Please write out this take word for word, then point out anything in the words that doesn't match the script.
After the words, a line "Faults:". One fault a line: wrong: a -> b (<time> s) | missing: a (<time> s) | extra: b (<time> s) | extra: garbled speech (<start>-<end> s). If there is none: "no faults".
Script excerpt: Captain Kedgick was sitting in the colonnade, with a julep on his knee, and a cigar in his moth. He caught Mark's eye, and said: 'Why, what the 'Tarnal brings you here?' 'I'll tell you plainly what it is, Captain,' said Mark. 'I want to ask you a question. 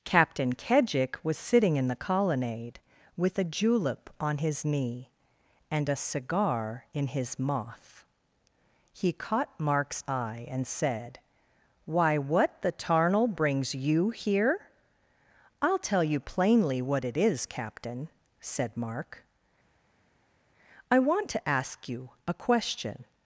Captain Kedgick was sitting in the colonnade, with a julep on his knee, and a cigar in his moth. He caught Mark's eye, and said: 'Why, what the 'Tarnal brings you here?' 'I'll tell you plainly what it is, Captain,' said Mark. 'I want to ask you a question.
Faults:
no faults